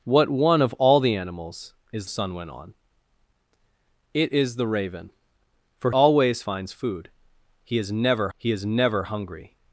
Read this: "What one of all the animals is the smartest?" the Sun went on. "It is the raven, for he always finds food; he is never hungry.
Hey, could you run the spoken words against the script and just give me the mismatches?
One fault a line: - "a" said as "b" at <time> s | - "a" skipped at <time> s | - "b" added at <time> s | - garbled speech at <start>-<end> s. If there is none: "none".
- "the smartest the" skipped at 2.1 s
- "he" skipped at 5.9 s
- "he is never" added at 8.4 s